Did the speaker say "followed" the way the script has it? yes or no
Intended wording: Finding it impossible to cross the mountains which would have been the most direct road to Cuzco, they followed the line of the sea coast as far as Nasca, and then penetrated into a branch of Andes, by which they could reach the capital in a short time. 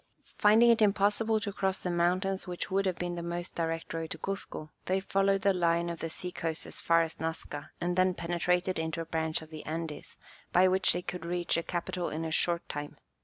yes